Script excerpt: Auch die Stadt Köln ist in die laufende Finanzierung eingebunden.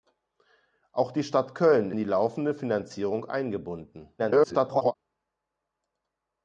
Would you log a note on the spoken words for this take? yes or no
yes